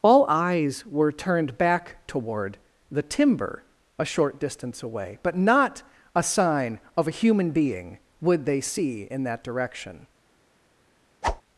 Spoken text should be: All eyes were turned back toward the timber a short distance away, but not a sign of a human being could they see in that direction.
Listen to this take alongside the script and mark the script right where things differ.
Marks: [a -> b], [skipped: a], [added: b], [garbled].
All eyes were turned back toward the timber a short distance away, but not a sign of a human being [could -> would] they see in that direction.